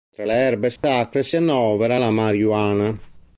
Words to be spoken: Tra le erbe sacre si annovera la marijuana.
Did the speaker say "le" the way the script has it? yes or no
yes